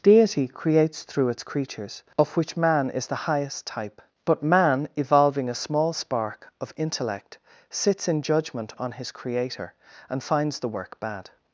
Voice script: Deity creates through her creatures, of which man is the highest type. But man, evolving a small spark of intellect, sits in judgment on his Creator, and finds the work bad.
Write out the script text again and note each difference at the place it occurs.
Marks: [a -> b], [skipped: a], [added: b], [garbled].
Deity creates through [her -> its] creatures, of which man is the highest type. But man, evolving a small spark of intellect, sits in judgment on his Creator, and finds the work bad.